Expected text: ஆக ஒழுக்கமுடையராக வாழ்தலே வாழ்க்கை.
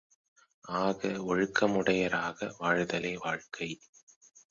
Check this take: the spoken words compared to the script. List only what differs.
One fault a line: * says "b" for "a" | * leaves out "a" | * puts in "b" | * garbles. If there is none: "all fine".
all fine